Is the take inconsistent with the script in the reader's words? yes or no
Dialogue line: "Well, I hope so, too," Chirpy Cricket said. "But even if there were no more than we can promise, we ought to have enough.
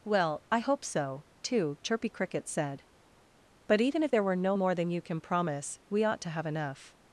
yes